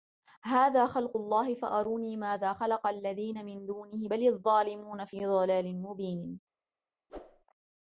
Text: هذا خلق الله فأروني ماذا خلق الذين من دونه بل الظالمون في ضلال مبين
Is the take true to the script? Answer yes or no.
yes